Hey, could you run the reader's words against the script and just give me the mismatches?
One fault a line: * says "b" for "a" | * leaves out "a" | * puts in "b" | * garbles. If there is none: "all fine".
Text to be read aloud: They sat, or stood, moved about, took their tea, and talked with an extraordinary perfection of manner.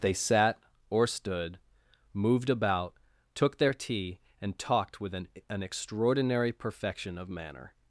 * puts in "an"